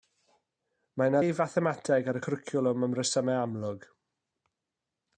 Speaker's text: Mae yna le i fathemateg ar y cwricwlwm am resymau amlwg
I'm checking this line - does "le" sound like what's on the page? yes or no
no